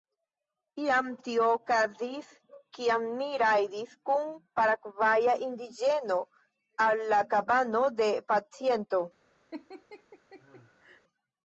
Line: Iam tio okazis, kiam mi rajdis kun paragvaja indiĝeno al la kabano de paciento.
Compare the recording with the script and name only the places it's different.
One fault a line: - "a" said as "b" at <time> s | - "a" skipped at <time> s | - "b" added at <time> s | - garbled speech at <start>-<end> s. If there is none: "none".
none